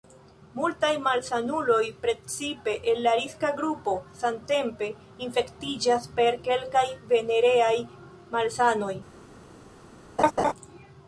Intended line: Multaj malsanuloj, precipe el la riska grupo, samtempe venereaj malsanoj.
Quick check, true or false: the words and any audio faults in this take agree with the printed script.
false